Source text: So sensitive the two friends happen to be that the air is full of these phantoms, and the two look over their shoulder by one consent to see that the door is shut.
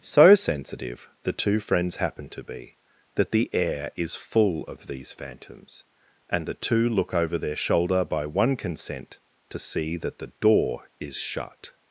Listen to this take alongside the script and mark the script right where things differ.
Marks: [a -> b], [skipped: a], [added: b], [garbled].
So sensitive the two friends happen to be that the air is full of these phantoms, and the two look over their shoulder by one consent to see that the door is shut.